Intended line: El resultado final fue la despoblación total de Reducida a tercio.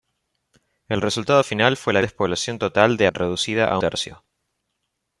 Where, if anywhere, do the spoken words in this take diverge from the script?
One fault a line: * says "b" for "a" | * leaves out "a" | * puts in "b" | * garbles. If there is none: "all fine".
all fine